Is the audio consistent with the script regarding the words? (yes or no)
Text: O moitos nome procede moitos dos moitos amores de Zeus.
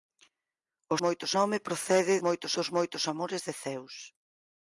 yes